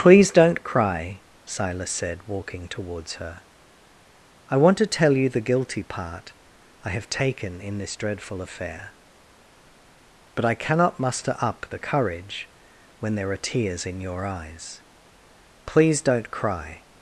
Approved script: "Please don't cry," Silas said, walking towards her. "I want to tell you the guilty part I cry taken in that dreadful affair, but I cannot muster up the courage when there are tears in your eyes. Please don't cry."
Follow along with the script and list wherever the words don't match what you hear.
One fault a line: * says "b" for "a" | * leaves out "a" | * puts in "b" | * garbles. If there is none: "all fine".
* says "have" for "cry"
* says "this" for "that"